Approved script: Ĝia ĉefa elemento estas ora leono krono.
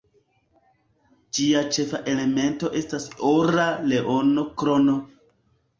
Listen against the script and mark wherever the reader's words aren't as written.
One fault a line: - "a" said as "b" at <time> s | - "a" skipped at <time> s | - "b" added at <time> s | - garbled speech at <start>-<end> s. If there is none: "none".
none